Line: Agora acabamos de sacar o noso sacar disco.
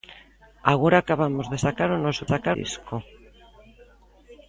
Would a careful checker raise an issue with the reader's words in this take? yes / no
no